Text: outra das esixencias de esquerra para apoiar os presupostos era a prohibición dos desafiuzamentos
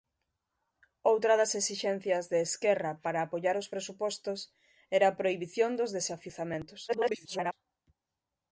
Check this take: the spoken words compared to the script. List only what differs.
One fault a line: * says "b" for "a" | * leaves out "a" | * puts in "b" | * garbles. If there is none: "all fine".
* garbles